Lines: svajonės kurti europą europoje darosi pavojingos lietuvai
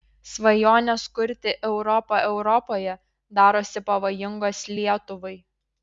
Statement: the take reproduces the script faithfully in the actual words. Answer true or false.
true